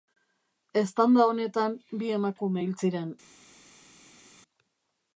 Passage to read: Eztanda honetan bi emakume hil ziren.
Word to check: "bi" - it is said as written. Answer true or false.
true